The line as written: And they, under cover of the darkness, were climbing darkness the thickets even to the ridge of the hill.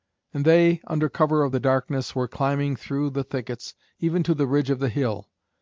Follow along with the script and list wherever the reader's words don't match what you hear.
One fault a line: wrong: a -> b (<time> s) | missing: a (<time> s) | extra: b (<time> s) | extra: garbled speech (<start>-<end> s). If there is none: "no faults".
wrong: darkness -> through (2.8 s)